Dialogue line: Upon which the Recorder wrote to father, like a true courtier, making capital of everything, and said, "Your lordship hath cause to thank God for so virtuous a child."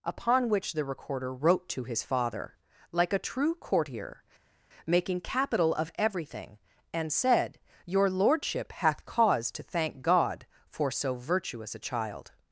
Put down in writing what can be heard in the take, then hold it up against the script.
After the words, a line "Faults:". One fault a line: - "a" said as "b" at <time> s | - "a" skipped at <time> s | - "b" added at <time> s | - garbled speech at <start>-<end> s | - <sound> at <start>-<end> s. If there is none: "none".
Upon which the Recorder wrote to his father, like a true courtier, making capital of everything, and said, "Your lordship hath cause to thank God for so virtuous a child."
Faults:
- "his" added at 1.8 s